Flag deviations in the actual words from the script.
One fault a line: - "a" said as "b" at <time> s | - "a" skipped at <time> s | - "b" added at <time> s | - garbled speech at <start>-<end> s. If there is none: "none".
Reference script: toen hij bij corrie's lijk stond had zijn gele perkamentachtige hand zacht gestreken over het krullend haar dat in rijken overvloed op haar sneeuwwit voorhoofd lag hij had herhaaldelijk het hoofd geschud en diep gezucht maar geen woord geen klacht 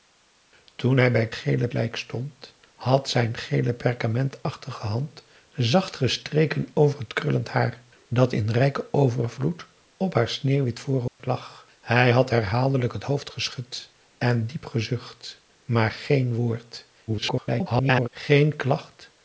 - "corrie's" said as "gele" at 1.3 s
- garbled speech at 17.1-18.1 s